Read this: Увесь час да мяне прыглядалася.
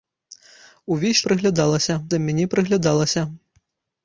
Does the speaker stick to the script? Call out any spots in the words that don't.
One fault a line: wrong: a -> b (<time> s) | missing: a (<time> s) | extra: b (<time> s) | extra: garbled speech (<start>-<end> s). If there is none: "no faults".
wrong: час -> прыглядалася (1.3 s)